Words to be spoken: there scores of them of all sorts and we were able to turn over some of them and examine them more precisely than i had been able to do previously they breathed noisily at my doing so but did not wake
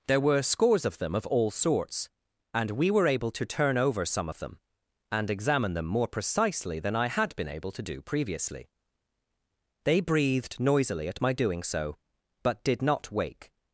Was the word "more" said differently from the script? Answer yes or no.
no